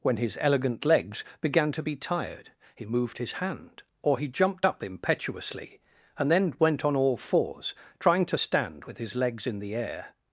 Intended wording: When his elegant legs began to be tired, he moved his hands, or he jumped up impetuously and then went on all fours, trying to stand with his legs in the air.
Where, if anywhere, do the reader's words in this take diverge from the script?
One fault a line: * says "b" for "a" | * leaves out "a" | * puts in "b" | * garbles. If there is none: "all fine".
* says "hand" for "hands"